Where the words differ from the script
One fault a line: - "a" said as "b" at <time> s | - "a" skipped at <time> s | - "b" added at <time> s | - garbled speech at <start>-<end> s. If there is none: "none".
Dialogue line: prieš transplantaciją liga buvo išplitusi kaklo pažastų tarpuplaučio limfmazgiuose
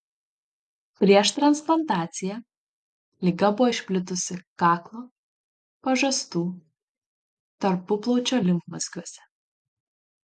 none